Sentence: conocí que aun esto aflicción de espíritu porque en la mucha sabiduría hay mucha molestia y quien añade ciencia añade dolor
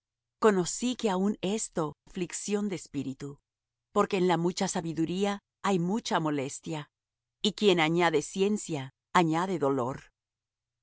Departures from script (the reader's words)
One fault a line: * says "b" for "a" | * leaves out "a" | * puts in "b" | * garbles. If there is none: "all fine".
all fine